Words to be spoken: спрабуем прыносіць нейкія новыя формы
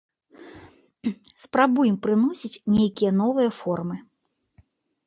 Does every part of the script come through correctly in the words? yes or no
yes